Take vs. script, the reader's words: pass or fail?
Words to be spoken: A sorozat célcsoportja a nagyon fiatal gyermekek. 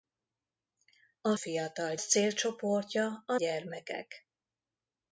fail